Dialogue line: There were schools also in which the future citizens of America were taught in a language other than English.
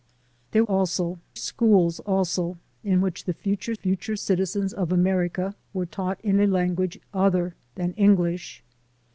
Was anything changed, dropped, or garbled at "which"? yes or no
no